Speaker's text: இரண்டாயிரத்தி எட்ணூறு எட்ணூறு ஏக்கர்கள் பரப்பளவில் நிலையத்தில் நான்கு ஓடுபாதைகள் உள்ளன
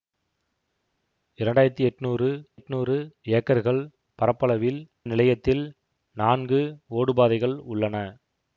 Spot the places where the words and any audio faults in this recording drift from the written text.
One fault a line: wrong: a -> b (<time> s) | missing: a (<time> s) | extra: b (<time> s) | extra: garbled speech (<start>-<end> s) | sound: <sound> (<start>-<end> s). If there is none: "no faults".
no faults